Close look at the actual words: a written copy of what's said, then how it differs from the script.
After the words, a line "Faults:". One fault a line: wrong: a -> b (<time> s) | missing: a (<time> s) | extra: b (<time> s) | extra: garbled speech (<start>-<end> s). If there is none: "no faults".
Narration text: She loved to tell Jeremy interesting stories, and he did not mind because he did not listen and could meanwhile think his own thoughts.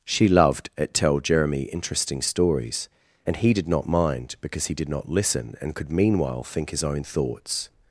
She loved at tell Jeremy interesting stories, and he did not mind because he did not listen and could meanwhile think his own thoughts.
Faults:
wrong: to -> at (0.8 s)